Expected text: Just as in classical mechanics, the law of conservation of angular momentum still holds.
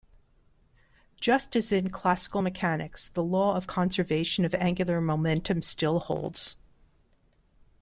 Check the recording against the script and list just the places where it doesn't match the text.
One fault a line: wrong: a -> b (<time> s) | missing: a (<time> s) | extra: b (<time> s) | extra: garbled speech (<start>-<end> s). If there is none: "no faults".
no faults